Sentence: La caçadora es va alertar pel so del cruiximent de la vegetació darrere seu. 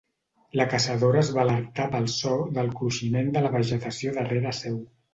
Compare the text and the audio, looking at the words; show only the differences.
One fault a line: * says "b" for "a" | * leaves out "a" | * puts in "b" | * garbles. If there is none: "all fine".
all fine